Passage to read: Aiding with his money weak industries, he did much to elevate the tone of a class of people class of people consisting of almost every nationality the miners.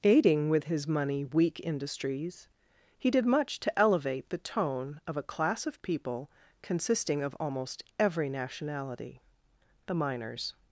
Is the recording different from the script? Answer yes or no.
yes